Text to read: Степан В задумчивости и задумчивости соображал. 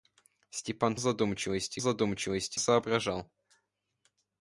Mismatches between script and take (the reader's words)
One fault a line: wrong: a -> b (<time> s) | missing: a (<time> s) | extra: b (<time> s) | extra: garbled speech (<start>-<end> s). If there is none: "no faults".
no faults